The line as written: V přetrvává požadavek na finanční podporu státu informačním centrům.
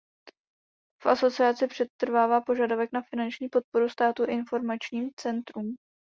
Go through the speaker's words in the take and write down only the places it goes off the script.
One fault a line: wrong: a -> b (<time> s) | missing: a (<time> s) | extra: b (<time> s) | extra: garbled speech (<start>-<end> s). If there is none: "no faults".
extra: asociaci (1.1 s)